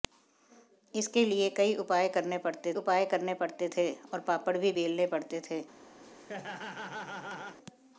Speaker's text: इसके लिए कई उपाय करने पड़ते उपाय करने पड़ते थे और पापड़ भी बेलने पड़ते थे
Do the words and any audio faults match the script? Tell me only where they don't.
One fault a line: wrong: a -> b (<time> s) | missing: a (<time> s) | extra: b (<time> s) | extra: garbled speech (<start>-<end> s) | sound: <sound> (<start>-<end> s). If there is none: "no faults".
sound: laugh (6.0-7.6 s)